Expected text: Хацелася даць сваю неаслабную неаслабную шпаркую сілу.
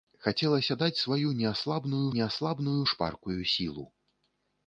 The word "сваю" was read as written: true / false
true